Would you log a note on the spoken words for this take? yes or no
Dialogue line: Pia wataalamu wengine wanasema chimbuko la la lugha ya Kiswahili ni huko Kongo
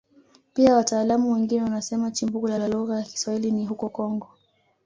no